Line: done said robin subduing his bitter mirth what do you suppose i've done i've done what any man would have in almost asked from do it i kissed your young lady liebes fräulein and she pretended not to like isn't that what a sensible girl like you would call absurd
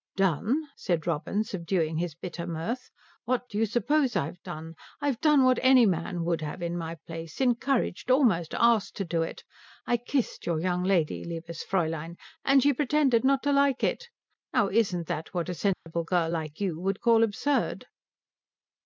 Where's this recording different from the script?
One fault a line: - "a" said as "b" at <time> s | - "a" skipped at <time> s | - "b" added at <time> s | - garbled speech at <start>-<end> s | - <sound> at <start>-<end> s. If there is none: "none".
- "my place encouraged" added at 6.8 s
- "from" said as "to" at 8.9 s
- "it now" added at 13.8 s
- dropout at 15.7-15.9 s